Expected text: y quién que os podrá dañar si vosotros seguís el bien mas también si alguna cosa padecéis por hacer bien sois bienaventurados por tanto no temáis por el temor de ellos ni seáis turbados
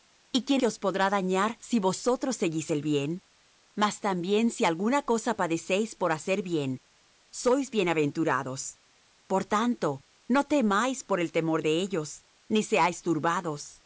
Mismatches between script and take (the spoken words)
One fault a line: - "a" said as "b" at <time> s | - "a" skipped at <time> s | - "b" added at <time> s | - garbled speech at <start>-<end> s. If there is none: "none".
none